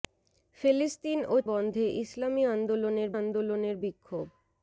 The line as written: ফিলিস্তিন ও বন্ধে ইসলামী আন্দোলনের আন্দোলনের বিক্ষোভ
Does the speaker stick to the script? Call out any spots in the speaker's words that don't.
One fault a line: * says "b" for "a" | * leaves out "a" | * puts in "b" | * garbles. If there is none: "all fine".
all fine